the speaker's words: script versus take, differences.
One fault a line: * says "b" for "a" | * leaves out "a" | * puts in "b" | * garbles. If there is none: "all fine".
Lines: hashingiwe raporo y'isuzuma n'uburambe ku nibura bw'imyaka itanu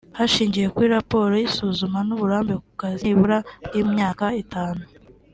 * puts in "kuri"
* puts in "kazi"